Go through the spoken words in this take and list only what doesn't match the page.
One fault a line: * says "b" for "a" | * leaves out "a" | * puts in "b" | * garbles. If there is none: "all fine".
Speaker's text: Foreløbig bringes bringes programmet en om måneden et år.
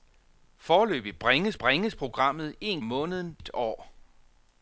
all fine